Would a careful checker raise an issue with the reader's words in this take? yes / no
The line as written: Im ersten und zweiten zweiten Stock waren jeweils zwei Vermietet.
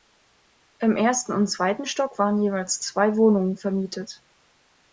yes